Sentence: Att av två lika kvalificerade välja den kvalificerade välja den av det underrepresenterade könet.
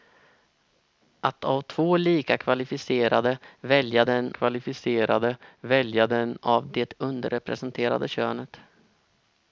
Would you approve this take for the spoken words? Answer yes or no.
yes